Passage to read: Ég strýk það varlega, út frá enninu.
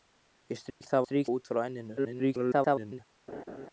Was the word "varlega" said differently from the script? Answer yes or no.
yes